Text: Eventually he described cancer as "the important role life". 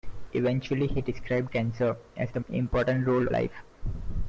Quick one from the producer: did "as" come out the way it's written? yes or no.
yes